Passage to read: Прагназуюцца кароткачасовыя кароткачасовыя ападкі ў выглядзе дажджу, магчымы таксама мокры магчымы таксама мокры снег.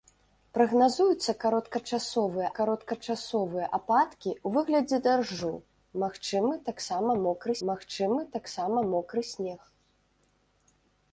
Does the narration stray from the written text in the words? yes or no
no